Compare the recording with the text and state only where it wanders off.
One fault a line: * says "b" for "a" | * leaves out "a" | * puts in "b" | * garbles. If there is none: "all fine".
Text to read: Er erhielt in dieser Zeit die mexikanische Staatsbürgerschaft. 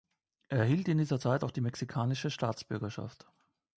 * puts in "auch"